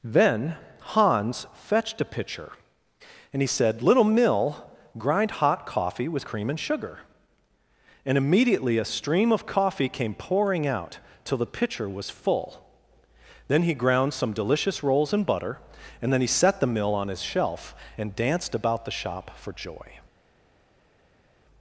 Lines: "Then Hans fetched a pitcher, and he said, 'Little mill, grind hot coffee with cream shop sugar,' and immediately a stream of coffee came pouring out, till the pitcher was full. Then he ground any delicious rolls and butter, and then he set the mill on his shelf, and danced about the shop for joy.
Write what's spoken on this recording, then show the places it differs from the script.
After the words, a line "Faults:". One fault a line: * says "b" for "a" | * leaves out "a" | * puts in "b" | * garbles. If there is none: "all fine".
"Then Hans fetched a pitcher, and he said, 'Little mill, grind hot coffee with cream and sugar,' and immediately a stream of coffee came pouring out, till the pitcher was full. Then he ground some delicious rolls and butter, and then he set the mill on his shelf, and danced about the shop for joy.
Faults:
* says "and" for "shop"
* says "some" for "any"